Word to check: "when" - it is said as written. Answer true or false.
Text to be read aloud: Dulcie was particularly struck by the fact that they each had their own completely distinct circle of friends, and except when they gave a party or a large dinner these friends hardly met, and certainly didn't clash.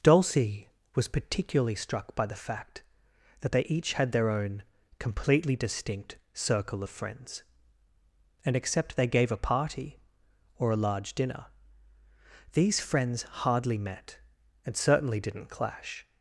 false